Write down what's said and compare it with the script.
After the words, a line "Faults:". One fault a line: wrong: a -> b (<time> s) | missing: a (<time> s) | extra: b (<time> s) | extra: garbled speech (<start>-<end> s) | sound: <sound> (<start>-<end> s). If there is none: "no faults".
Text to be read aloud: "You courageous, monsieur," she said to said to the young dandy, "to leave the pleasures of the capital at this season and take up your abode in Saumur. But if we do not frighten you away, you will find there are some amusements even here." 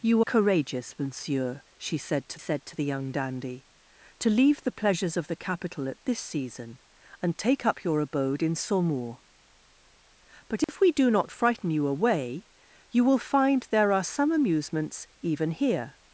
"You courageous, monsieur," she said to said to the young dandy, "to leave the pleasures of the capital at this season and take up your abode in Saumur. But if we do not frighten you away, you will find there are some amusements even here."
Faults:
sound: dropout (10.6-10.7 s)